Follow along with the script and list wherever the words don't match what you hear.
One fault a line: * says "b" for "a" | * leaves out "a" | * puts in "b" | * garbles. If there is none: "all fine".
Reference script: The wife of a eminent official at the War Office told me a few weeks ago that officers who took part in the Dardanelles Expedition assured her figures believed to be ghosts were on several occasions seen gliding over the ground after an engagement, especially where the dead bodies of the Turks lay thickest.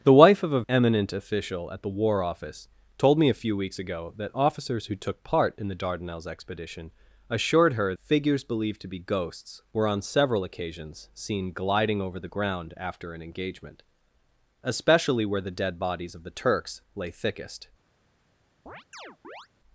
all fine